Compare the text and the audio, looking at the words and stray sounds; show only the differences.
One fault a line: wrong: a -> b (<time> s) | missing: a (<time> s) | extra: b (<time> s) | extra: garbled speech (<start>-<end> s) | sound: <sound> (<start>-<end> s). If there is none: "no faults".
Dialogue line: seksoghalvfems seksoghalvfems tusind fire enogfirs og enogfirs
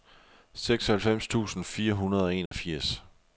missing: seksoghalvfems (1.3 s)
wrong: enogfirs -> hundrede (1.9 s)
sound: dropout (2.5-2.5 s)